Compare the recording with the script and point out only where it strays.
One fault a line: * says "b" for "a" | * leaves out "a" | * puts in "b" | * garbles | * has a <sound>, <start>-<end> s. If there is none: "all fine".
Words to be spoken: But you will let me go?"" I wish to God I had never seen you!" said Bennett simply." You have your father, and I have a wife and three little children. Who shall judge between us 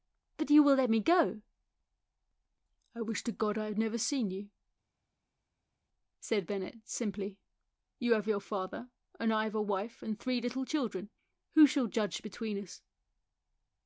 all fine